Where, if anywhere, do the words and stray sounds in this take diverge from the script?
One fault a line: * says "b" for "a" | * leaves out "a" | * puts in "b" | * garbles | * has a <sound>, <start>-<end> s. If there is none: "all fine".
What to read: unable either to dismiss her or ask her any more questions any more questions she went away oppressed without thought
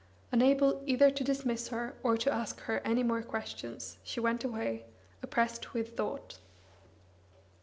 * puts in "to"
* leaves out "any more questions"
* says "with" for "without"